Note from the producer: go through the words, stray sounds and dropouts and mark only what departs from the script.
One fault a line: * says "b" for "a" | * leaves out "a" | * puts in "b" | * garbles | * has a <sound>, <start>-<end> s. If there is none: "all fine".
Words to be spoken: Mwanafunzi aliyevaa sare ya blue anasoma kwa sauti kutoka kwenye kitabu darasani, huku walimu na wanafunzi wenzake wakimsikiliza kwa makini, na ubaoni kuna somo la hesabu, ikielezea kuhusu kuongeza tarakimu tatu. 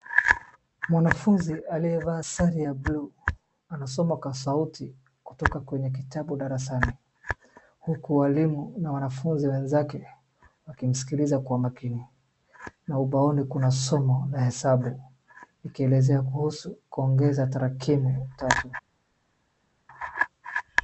all fine